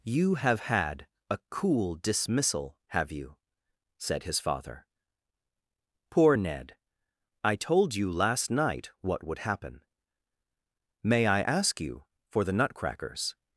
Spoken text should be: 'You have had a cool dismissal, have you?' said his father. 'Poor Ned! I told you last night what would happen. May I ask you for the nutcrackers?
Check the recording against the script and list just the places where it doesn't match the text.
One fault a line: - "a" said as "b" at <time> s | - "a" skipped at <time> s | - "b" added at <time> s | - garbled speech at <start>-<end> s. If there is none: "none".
none